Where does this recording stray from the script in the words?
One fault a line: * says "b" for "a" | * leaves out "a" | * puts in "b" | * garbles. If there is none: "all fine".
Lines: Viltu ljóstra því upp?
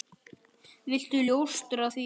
all fine